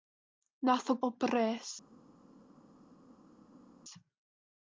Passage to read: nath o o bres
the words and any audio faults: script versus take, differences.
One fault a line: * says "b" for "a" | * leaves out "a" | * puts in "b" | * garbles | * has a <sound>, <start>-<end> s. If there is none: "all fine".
all fine